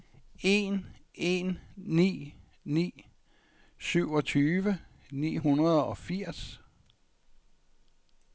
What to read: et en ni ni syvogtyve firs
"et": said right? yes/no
no